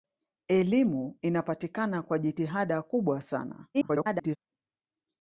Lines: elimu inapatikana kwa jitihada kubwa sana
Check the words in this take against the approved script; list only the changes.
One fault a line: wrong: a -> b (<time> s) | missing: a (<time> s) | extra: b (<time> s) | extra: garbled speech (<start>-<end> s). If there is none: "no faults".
extra: garbled speech (3.7-4.4 s)